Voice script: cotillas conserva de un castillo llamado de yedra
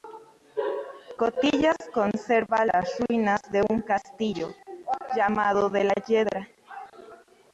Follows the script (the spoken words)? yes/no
no